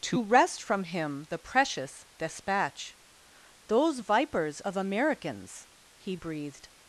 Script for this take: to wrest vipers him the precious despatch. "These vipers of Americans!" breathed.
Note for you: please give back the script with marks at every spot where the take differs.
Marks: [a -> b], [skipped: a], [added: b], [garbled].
to wrest [vipers -> from] him the precious despatch. ["These -> Those] vipers of Americans!" [added: he] breathed.